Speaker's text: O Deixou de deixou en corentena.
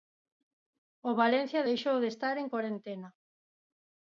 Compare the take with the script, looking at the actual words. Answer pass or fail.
fail